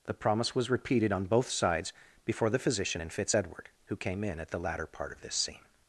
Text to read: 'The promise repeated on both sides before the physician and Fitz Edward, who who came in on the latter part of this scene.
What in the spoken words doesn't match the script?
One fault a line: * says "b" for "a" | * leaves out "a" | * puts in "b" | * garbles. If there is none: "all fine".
* puts in "was"
* leaves out "who"
* says "at" for "on"